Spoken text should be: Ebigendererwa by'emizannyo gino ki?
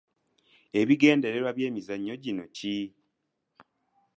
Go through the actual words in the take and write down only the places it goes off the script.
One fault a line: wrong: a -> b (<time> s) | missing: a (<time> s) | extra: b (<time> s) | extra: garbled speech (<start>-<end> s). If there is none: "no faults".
no faults